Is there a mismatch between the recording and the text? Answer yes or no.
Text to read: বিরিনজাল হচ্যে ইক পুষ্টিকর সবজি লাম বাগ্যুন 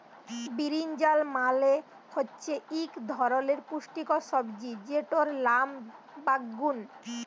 yes